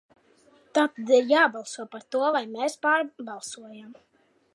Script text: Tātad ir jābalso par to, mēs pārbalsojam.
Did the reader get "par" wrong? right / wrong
right